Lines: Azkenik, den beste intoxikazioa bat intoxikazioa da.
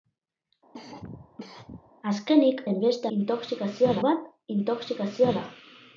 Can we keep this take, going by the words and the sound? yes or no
no